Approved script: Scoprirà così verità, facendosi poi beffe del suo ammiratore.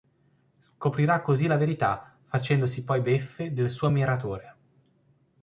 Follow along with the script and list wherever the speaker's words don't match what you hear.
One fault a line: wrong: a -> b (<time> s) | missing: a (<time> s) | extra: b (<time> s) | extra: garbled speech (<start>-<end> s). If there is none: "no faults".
extra: la (1.4 s)